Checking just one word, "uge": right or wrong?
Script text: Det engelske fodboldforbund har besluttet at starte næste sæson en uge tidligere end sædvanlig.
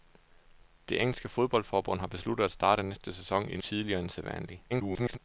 wrong